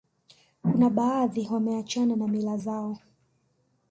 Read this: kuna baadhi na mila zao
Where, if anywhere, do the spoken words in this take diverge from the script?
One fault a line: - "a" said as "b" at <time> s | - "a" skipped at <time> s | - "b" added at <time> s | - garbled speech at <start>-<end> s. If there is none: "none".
- "wameachana" added at 1.5 s